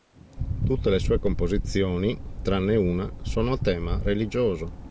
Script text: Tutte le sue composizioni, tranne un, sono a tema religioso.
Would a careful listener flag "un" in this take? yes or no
yes